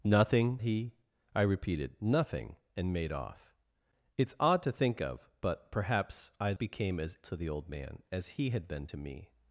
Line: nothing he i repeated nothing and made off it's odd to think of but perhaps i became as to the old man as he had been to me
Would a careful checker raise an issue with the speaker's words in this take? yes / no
no